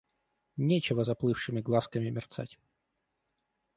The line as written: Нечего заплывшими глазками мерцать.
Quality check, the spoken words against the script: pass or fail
pass